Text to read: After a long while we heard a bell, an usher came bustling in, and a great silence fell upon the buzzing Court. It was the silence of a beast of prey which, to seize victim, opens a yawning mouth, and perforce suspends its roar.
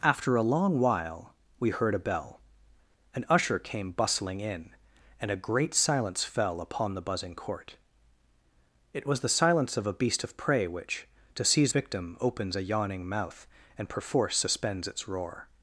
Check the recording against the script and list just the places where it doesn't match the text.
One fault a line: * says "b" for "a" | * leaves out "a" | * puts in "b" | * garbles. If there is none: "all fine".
all fine